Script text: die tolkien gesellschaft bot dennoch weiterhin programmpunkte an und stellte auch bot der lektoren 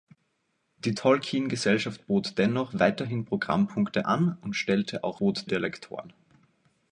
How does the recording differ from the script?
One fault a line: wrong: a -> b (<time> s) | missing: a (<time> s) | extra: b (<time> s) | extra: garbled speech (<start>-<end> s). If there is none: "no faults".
no faults